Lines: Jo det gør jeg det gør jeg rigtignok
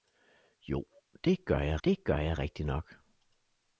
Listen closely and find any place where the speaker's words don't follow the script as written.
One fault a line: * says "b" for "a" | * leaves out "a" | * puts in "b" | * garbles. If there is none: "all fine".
all fine